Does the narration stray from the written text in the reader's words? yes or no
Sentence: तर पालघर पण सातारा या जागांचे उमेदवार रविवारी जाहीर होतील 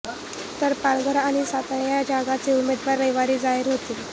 yes